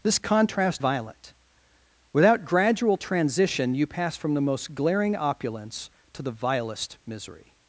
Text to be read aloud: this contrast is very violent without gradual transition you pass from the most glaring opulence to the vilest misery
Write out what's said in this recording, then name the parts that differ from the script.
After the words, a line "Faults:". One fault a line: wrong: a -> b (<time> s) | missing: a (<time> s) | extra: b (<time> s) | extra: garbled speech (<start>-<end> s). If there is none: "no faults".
this contrast violent without gradual transition you pass from the most glaring opulence to the vilest misery
Faults:
missing: is very (0.8 s)